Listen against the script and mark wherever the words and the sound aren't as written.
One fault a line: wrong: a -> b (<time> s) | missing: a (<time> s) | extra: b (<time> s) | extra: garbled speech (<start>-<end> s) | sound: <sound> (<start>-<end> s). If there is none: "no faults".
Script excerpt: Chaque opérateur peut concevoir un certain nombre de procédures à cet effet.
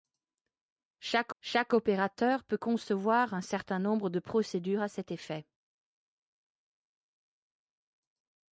extra: chaque (1.4 s)